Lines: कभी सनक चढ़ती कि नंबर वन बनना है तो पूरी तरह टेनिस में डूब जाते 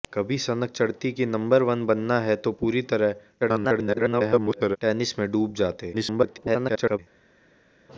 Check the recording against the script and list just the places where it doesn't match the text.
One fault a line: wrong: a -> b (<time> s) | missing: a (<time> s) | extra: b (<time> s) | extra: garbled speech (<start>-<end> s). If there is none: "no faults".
extra: garbled speech (3.4-4.8 s)
extra: garbled speech (5.9-7.0 s)